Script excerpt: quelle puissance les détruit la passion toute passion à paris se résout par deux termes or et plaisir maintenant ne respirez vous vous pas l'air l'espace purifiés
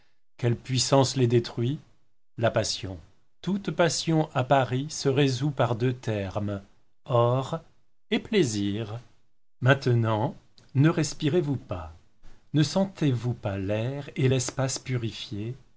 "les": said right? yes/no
yes